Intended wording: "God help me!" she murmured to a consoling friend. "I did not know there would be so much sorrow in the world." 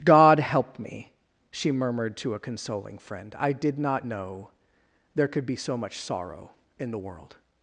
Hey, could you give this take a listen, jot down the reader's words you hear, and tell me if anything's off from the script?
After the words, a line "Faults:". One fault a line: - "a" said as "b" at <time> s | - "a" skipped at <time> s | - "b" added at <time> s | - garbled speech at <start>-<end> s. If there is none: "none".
"God help me!" she murmured to a consoling friend. "I did not know there could be so much sorrow in the world."
Faults:
- "would" said as "could" at 5.3 s